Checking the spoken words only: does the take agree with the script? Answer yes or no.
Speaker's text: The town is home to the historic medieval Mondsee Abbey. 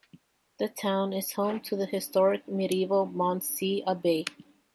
yes